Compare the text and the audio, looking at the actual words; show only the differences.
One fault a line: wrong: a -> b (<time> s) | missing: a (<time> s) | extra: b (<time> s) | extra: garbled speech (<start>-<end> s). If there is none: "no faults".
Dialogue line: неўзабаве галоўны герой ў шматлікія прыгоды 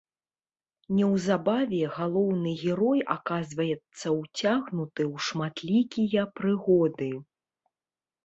extra: аказваецца ўцягнуты (3.1 s)